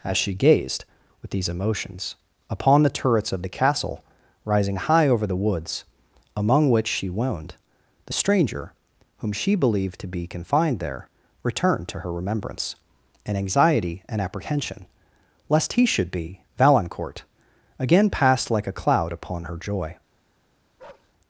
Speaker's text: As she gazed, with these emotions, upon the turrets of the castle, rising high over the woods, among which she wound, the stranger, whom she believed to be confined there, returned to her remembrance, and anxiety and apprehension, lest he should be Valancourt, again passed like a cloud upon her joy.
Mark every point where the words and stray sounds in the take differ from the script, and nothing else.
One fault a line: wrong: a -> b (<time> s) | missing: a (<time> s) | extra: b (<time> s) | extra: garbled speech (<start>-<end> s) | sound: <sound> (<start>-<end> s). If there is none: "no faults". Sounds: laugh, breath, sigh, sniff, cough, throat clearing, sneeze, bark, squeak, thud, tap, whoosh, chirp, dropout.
sound: bark (20.8-21.1 s)